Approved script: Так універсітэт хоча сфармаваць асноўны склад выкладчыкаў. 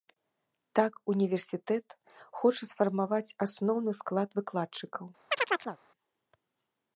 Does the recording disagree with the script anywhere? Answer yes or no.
no